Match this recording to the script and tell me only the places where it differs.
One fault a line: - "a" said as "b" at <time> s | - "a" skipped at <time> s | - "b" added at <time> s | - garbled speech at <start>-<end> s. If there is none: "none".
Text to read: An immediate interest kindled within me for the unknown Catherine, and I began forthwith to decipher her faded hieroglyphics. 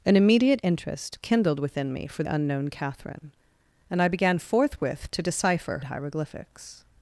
- "the" skipped at 2.2 s
- "her faded" skipped at 5.8 s